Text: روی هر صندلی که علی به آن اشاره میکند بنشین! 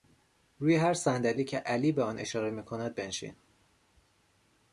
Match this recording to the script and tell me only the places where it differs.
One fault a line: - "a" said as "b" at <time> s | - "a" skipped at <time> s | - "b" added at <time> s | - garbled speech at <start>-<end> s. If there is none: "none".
none